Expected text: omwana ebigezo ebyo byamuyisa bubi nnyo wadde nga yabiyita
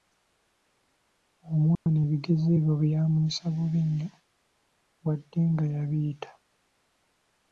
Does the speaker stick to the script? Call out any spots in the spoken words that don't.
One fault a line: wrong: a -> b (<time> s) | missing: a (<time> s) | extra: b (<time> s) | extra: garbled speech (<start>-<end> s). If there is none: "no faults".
no faults